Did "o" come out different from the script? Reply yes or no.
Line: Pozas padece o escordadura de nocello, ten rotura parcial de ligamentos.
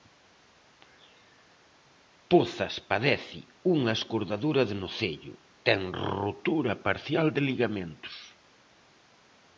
yes